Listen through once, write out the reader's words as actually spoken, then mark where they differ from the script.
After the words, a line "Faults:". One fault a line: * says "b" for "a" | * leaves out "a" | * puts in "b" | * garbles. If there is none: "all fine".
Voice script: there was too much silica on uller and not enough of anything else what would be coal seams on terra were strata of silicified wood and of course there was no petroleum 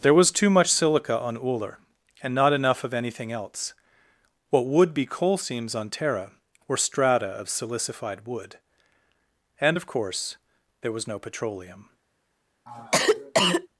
there was too much silica on uller and not enough of anything else what would be coal seams on terra were strata of silicified wood and of course there was no petroleum
Faults:
all fine